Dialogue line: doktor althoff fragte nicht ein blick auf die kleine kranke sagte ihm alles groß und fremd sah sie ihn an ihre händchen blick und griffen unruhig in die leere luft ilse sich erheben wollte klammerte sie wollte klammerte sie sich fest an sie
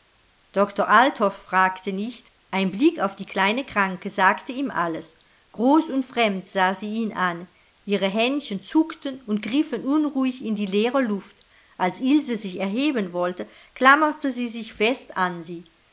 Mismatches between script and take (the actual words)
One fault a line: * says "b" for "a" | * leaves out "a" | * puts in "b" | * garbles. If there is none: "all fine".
* says "zuckten" for "blick"
* puts in "als"
* leaves out "wollte klammerte sie"